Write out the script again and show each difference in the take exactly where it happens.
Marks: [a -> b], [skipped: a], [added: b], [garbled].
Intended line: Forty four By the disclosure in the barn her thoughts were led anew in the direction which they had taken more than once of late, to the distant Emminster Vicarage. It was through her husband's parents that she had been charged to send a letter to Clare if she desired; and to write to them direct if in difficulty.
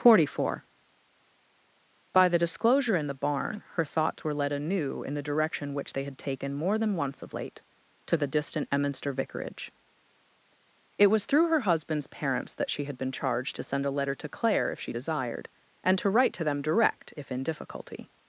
Forty four By the disclosure in the barn her thoughts were led anew in the direction which they had taken more than once of late, to the distant Emminster Vicarage. It was through her husband's parents that she had been charged to send a letter to Clare if she desired; and to write to them direct if in difficulty.